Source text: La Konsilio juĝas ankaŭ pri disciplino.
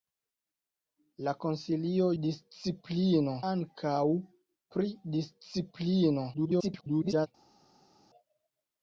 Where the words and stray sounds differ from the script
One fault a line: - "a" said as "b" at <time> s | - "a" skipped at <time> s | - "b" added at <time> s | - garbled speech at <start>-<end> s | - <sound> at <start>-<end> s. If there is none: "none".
- "juĝas" said as "disciplino" at 2.2 s
- garbled speech at 6.3-7.3 s